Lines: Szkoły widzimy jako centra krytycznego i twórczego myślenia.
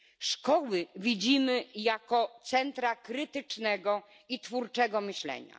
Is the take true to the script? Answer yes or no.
yes